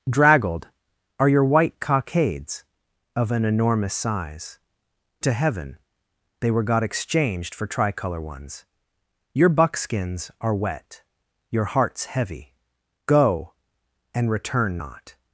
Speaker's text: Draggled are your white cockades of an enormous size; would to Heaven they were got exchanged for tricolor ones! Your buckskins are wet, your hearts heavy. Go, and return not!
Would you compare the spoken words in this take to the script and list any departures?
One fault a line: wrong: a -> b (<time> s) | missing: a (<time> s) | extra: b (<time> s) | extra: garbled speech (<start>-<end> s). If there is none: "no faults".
missing: would (4.6 s)